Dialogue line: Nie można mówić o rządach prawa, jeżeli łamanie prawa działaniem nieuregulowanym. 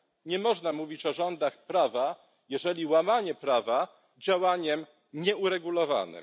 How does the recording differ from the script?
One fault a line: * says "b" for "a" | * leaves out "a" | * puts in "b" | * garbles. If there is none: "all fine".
all fine